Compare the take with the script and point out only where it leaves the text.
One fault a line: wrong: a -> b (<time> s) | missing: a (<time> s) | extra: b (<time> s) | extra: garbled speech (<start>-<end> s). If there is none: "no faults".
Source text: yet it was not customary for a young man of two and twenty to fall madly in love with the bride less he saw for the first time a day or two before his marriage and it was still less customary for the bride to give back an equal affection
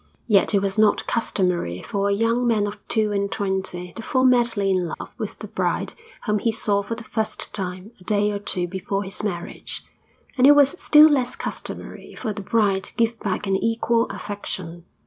wrong: less -> whom (6.2 s)